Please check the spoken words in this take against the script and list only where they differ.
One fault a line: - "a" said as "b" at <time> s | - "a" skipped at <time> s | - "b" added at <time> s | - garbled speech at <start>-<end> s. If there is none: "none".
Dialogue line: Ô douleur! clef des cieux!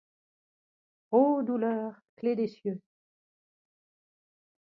none